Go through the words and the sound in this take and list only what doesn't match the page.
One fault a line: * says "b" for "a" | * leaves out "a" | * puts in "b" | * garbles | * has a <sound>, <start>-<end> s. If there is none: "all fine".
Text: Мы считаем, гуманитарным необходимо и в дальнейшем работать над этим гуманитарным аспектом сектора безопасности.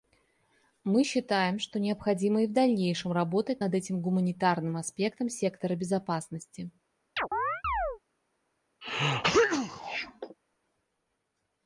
* says "что" for "гуманитарным"
* has a chirp, 7.2-8.0 s
* has a sneeze, 8.8-10.4 s